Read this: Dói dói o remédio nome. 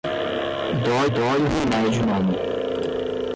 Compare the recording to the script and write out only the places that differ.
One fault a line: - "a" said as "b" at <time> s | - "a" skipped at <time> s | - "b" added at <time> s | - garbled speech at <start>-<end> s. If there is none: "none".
none